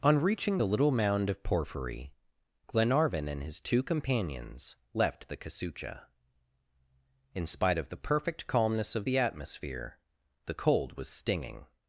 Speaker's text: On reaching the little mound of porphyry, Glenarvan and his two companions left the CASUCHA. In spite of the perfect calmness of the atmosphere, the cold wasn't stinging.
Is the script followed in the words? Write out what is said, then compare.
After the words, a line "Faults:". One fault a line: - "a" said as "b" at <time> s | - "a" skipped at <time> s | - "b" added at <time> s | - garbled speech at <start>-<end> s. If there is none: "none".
On reaching the little mound of porphyry, Glenarvan and his two companions left the CASUCHA. In spite of the perfect calmness of the atmosphere, the cold was stinging.
Faults:
- "wasn't" said as "was" at 11.0 s